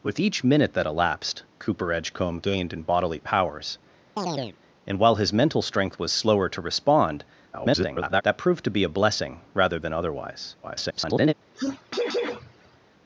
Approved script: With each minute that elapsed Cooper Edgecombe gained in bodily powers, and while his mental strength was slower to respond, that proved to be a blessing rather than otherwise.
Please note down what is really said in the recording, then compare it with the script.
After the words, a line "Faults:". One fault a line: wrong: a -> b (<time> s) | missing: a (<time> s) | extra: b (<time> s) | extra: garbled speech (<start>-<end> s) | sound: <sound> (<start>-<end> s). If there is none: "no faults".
With each minute that elapsed Cooper Edgecombe gained in bodily powers, and while his mental strength was slower to respond, [garbled] that proved to be a blessing rather than otherwise. [garbled]
Faults:
sound: chirp (4.2-4.6 s)
extra: garbled speech (7.5-8.2 s)
extra: garbled speech (10.6-11.3 s)
sound: sneeze (11.5-12.8 s)